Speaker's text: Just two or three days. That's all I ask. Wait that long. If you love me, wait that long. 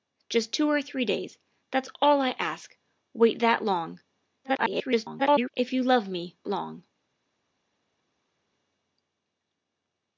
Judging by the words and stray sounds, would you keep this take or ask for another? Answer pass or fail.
fail